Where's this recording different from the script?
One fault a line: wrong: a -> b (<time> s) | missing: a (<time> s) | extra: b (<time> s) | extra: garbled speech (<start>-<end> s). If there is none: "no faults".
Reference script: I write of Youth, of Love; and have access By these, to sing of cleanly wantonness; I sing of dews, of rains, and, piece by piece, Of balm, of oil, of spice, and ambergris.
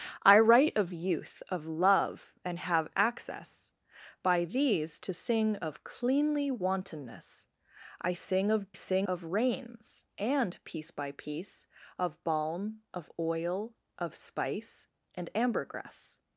wrong: dews -> sing (8.7 s)